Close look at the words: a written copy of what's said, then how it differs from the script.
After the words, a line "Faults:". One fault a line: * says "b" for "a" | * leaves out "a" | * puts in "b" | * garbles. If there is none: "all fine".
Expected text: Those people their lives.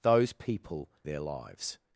Those people their lives.
Faults:
all fine